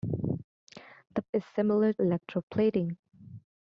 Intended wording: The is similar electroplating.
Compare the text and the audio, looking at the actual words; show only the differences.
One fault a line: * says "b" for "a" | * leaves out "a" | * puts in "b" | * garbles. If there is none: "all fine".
all fine